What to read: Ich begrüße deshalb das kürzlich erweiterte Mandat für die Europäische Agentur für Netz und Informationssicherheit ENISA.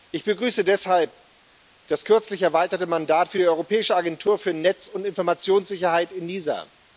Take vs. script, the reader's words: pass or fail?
pass